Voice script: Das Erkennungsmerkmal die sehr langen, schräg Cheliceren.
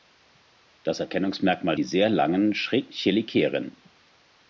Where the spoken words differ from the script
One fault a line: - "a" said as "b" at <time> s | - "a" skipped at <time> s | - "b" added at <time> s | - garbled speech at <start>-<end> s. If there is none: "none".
none